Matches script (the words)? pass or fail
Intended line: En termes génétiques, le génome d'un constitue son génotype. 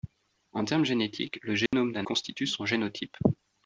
pass